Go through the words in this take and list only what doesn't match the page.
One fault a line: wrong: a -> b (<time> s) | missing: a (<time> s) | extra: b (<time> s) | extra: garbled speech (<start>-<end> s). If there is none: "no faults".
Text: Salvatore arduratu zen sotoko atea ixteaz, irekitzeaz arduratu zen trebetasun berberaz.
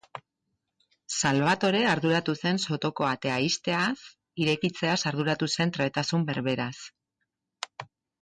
no faults